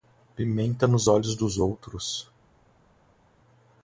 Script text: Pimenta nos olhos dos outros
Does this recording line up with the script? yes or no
yes